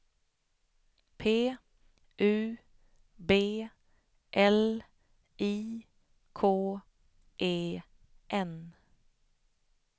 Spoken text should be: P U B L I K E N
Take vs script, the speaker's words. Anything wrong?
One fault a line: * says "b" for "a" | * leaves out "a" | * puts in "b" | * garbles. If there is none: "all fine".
all fine